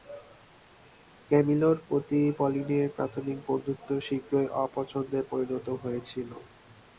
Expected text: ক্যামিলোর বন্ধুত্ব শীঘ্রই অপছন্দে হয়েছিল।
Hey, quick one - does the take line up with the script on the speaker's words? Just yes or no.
no